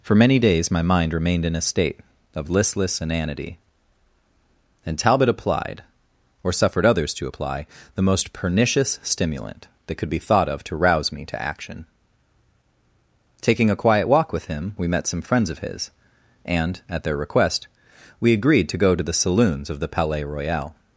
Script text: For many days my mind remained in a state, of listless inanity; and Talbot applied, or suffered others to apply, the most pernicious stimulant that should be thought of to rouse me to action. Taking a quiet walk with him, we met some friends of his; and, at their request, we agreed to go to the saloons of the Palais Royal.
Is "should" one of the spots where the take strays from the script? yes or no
yes